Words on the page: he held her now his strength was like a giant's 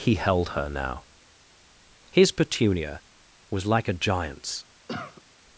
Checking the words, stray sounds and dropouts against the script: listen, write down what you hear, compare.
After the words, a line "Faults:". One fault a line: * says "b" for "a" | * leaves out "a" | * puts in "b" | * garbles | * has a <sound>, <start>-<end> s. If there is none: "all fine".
he held her now his petunia was like a giant's
Faults:
* says "petunia" for "strength"
* has a cough, 4.9-5.2 s